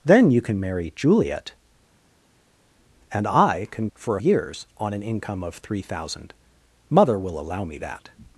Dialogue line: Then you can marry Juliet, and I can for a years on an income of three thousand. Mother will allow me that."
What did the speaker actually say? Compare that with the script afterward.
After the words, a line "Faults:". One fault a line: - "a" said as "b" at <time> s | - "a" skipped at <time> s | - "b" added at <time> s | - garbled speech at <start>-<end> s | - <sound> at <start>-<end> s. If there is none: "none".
Then you can marry Juliet, and I can for a years on an income of three thousand. Mother will allow me that."
Faults:
none